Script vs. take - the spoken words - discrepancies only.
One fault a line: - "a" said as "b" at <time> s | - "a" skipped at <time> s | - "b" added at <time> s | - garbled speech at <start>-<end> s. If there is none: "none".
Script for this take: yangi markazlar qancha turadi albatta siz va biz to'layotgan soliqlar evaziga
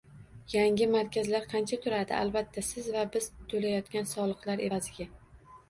none